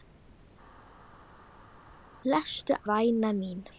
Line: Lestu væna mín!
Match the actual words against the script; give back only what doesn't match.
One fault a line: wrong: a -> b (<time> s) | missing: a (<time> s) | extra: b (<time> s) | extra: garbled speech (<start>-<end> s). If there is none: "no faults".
no faults